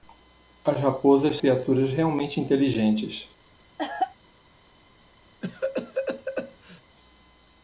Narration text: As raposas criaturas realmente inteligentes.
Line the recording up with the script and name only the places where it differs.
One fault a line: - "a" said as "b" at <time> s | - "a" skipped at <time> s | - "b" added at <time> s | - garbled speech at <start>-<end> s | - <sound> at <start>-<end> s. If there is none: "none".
- cough at 3.8-4.2 s
- cough at 5.4-6.8 s